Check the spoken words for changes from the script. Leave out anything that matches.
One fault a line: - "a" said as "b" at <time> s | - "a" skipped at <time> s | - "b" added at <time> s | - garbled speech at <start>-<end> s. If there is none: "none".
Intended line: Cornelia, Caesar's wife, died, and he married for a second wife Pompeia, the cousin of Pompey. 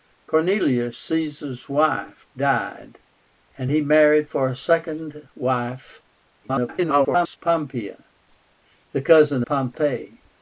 - garbled speech at 6.4-7.4 s
- "of" skipped at 9.4 s